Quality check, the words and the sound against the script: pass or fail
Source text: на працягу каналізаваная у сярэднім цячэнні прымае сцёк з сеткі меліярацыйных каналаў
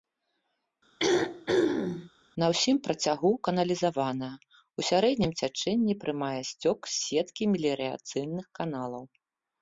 fail